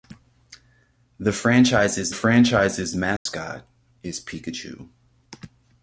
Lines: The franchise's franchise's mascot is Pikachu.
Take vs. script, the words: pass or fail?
pass